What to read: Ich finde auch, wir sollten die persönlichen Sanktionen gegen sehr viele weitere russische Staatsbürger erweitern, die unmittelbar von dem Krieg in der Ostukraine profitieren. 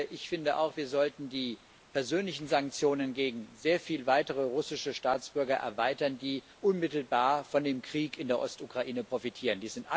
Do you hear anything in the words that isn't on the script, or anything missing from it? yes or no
no